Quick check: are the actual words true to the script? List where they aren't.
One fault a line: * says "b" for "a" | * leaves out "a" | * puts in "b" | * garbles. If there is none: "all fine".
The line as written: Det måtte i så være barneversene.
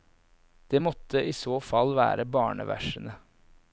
* puts in "fall"